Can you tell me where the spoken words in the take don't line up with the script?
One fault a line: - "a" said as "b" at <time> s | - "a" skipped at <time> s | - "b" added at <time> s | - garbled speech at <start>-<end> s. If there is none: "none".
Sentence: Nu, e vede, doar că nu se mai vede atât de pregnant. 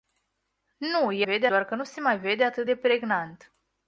none